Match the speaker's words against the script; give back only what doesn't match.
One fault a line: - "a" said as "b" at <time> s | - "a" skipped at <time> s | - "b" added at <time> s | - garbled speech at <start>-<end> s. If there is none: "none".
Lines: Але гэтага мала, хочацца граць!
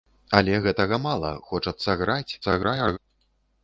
- garbled speech at 2.4-3.0 s